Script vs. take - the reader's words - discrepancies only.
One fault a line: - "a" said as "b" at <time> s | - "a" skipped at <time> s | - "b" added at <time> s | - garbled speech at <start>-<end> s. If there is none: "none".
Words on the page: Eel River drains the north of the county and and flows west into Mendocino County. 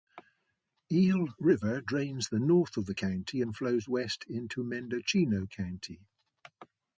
- "and" skipped at 3.6 s